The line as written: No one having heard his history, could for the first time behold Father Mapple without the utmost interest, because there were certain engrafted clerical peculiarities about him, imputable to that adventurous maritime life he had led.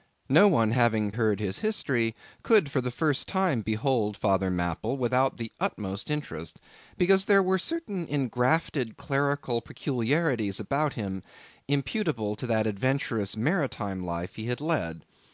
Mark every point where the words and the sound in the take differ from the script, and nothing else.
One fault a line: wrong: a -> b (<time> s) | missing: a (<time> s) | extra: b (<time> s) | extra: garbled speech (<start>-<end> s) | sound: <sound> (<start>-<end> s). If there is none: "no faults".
no faults